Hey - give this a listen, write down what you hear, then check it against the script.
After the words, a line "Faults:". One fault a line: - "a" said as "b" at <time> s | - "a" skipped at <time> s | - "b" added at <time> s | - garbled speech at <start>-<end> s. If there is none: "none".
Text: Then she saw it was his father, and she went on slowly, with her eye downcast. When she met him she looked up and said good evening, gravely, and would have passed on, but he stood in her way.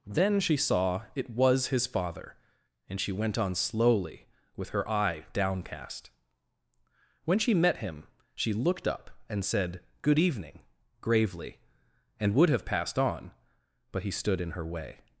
Then she saw it was his father, and she went on slowly, with her eye downcast. When she met him she looked up and said good evening, gravely, and would have passed on, but he stood in her way.
Faults:
none